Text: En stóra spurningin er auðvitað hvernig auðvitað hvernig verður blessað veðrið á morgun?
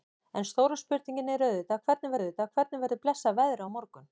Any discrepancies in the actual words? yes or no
no